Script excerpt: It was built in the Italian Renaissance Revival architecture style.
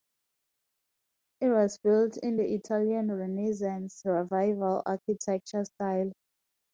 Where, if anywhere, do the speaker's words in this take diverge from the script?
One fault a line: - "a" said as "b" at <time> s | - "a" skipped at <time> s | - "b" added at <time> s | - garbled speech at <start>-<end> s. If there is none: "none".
none